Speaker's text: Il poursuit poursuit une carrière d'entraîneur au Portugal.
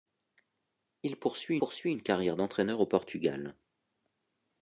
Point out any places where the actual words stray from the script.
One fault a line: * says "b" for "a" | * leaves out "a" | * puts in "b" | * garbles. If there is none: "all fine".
all fine